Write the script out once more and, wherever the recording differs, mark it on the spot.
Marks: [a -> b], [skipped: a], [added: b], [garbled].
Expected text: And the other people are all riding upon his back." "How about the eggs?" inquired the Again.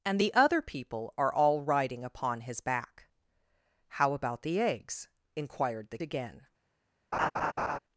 And the other people are all riding upon his back." "How about the eggs?" inquired the Again.